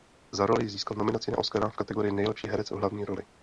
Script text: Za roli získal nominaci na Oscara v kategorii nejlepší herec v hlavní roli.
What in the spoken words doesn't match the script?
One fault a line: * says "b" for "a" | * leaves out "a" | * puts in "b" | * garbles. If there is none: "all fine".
all fine